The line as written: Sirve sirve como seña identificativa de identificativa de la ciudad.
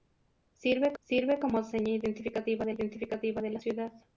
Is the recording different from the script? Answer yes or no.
no